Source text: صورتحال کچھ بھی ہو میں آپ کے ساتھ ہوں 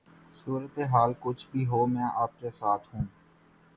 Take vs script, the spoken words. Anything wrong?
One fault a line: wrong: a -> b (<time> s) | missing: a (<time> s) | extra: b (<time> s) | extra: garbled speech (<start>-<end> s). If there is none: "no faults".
no faults